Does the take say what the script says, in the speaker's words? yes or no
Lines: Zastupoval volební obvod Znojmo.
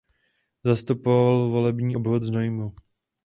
yes